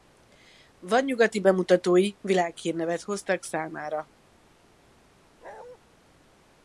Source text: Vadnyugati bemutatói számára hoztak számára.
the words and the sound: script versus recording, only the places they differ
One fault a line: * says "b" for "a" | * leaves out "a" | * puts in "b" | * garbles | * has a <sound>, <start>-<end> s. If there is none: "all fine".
* says "világhírnevet" for "számára"
* has a bark, 5.4-5.8 s